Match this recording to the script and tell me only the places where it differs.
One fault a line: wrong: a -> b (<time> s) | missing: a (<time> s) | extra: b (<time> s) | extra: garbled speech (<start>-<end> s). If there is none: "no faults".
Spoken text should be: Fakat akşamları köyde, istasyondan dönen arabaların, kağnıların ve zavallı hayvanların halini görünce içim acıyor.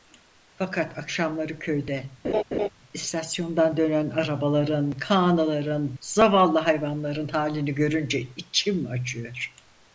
missing: ve (6.0 s)